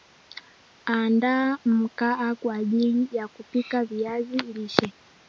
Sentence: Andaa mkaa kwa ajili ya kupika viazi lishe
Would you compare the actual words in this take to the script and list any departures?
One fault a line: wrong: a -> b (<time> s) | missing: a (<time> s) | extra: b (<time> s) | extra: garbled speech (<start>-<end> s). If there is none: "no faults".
no faults